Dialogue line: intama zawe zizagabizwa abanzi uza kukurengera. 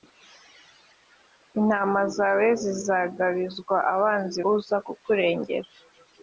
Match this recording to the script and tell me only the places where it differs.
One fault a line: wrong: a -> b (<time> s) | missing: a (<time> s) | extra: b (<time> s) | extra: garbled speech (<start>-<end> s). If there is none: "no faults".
no faults